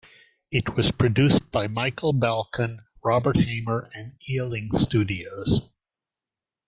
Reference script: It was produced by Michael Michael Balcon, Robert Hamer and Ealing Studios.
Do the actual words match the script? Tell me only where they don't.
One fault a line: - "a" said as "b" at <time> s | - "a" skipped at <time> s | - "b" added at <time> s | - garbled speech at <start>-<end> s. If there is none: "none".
- "Michael" skipped at 2.1 s